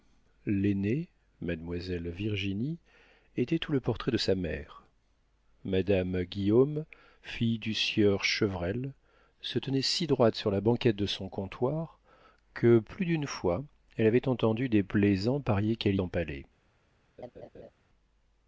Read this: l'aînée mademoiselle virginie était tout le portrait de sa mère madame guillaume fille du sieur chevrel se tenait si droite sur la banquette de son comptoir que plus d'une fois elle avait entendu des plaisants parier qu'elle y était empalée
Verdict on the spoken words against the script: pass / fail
fail